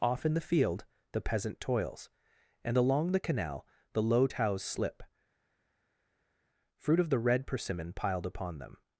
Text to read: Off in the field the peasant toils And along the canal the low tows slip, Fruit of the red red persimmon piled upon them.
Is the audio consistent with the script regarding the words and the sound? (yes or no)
no